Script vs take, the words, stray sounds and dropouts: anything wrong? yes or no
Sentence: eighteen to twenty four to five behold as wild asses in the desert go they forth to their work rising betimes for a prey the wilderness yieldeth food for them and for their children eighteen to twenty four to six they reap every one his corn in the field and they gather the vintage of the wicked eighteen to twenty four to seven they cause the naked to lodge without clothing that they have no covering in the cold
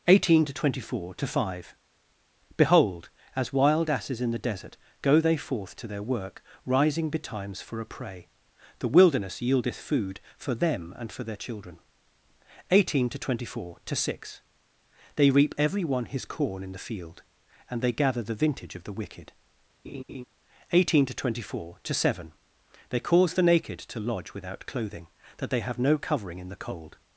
yes